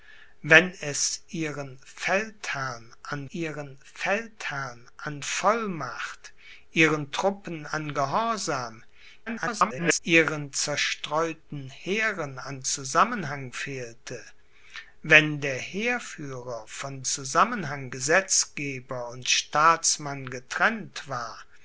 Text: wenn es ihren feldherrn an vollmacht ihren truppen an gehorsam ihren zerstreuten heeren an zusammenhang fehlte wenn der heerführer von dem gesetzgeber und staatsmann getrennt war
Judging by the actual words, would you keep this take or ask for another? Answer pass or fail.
fail